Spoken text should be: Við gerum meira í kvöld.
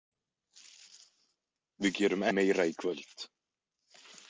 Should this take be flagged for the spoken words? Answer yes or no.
no